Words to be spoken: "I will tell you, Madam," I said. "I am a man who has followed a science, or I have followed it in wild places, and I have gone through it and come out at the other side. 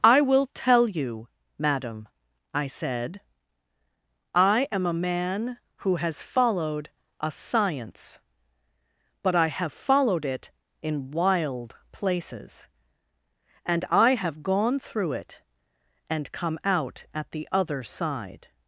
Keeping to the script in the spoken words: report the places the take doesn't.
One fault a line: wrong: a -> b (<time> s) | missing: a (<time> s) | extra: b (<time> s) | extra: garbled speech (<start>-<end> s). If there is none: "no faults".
wrong: or -> but (9.2 s)